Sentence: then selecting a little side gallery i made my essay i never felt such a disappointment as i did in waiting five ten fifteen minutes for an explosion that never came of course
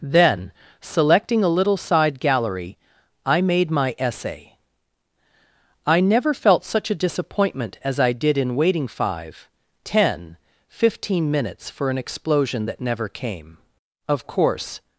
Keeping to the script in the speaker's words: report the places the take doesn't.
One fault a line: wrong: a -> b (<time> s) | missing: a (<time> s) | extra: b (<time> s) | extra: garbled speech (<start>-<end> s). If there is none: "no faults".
no faults